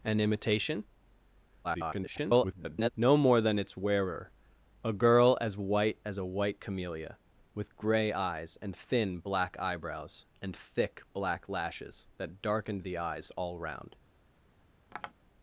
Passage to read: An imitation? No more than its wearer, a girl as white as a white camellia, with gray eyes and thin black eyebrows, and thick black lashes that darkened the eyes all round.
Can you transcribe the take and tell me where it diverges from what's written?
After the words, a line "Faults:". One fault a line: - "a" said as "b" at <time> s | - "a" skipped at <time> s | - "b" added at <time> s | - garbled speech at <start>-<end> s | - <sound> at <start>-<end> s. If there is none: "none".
An imitation? [garbled] No more than its wearer, a girl as white as a white camellia, with gray eyes and thin black eyebrows, and thick black lashes that darkened the eyes all round.
Faults:
- garbled speech at 1.6-2.9 s
- tap at 14.9-15.1 s